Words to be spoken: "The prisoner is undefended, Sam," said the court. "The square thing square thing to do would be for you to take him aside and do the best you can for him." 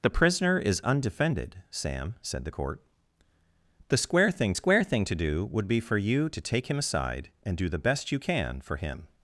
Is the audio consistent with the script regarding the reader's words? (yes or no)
yes